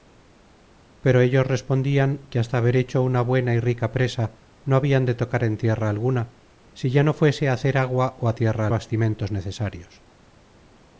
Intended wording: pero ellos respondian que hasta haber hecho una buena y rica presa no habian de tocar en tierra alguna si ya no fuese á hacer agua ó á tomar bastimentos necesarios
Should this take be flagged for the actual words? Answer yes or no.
yes